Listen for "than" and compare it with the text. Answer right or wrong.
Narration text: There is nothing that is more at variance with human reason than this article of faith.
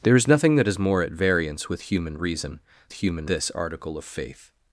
wrong